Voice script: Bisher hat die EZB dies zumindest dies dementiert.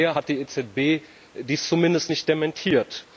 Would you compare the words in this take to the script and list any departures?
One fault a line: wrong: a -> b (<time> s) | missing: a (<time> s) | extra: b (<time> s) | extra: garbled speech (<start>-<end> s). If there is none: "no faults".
wrong: dies -> nicht (2.1 s)